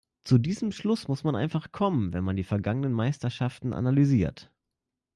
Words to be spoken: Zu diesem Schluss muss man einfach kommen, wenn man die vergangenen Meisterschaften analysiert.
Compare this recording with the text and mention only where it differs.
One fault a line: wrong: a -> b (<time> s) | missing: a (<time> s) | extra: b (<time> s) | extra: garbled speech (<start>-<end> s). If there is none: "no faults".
no faults